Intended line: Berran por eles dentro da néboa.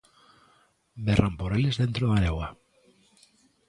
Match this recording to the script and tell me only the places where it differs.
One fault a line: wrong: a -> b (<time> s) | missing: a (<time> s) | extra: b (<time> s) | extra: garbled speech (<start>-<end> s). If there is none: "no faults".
no faults